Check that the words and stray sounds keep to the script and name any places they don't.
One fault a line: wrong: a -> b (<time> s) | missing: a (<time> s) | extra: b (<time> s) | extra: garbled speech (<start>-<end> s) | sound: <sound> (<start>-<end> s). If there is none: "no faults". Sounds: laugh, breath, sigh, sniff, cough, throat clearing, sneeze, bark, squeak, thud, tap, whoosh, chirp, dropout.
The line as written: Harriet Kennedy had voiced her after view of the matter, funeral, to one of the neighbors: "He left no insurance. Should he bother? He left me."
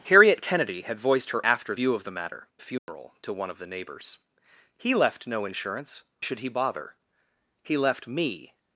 sound: dropout (2.8-2.9 s)